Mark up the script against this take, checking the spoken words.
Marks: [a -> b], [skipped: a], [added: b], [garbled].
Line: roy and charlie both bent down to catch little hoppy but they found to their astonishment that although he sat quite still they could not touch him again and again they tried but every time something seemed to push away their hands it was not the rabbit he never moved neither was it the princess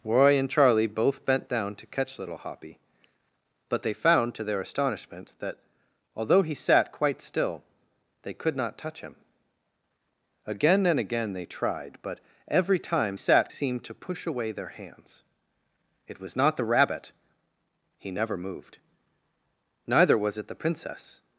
roy and charlie both bent down to catch little hoppy but they found to their astonishment that although he sat quite still they could not touch him again and again they tried but every time [something -> sat] seemed to push away their hands it was not the rabbit he never moved neither was it the princess